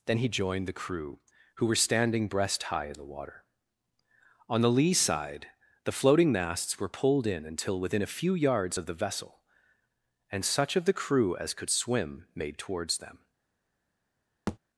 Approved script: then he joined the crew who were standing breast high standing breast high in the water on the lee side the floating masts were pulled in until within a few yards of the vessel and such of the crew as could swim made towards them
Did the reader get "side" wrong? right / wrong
right